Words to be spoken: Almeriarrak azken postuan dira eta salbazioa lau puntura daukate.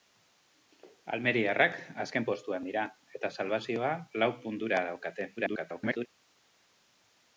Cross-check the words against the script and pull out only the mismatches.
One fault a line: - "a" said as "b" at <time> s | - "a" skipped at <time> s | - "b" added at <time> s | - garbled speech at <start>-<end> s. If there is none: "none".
- garbled speech at 5.4-6.1 s